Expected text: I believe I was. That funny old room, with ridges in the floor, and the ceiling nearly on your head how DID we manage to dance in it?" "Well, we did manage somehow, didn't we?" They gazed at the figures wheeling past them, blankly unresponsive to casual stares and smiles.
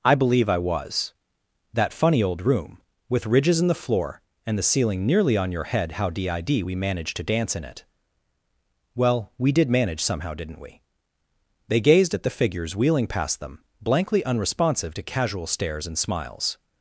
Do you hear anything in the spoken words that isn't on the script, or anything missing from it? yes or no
no